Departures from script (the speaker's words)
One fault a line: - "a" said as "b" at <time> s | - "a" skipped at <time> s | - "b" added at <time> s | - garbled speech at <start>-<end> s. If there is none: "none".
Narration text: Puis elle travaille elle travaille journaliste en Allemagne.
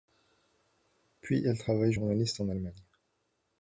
- "elle travaille" skipped at 1.9 s